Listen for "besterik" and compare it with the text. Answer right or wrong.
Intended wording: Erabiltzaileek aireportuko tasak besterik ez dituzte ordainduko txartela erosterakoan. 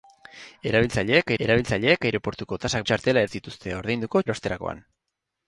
wrong